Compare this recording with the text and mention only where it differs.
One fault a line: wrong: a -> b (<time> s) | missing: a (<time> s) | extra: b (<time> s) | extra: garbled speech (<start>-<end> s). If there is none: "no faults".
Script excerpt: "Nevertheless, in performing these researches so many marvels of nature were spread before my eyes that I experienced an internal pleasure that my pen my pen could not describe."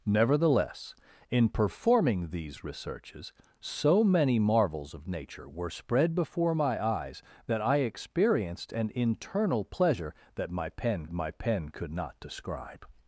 no faults